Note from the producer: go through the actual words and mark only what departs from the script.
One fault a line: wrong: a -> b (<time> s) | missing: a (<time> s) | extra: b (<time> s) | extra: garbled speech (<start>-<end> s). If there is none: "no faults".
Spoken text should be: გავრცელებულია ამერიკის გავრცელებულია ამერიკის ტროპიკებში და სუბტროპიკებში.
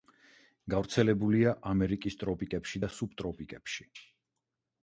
missing: გავრცელებულია ამერიკის (2.2 s)